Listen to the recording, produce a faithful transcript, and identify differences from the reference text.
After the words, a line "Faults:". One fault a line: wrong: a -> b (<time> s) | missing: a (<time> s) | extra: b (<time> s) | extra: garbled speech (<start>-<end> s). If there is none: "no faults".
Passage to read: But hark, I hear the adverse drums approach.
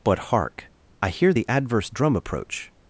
But hark, I hear the adverse drum approach.
Faults:
wrong: drums -> drum (1.9 s)